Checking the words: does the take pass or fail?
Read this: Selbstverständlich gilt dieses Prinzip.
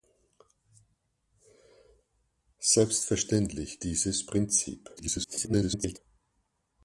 fail